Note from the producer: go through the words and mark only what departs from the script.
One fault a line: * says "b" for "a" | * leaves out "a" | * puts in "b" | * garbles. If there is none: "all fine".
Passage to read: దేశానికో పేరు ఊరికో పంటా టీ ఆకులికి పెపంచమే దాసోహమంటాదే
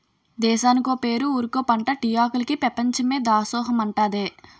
all fine